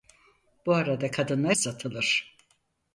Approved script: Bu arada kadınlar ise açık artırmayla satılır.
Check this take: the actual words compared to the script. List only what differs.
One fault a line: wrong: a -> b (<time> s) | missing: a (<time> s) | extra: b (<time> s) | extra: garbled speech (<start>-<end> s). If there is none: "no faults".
missing: ise açık artırmayla (1.6 s)